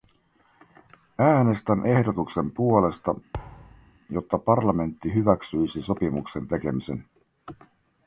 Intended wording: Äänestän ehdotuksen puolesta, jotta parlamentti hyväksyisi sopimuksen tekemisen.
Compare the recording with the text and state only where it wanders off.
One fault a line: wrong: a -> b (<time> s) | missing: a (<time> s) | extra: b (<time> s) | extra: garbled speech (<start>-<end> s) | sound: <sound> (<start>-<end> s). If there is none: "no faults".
sound: thud (3.3-4.0 s)